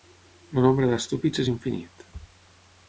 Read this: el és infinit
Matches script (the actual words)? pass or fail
fail